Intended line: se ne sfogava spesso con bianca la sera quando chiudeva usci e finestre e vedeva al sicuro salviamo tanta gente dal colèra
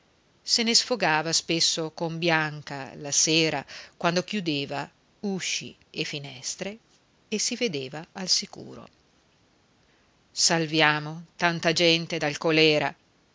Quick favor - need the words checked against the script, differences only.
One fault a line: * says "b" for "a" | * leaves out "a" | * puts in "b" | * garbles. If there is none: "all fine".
* puts in "si"